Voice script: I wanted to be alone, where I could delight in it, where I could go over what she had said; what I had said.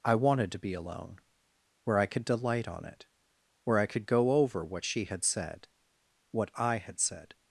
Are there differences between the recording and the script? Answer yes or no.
yes